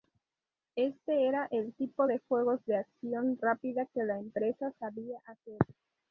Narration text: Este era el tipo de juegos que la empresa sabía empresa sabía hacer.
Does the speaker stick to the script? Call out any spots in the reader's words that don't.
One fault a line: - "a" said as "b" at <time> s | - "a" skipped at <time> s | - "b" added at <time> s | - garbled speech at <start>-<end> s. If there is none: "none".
- "de acción rápida" added at 2.7 s
- "empresa sabía" skipped at 5.2 s